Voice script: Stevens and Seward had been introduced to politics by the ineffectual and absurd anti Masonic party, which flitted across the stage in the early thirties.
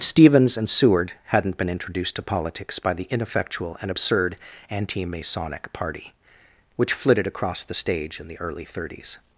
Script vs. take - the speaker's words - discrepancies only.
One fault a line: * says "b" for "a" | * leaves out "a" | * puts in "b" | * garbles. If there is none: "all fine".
* says "hadn't" for "had"